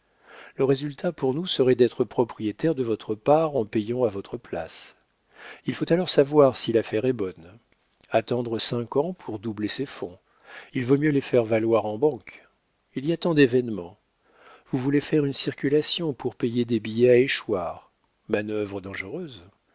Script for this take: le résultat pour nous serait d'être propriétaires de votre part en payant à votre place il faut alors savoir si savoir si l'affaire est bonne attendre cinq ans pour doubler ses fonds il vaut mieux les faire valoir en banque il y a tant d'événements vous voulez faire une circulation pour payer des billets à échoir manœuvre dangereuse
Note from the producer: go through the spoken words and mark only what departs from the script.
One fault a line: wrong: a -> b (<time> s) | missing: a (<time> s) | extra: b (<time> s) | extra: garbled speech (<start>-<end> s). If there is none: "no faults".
missing: savoir si (6.7 s)